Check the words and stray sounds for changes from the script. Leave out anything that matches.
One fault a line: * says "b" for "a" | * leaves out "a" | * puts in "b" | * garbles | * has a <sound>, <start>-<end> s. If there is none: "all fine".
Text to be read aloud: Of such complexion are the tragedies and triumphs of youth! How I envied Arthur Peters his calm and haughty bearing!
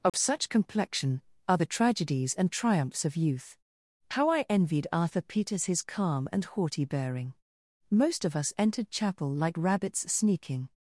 * has a dropout, 0.1-0.1 s
* puts in "Most of us entered chapel like rabbits sneaking"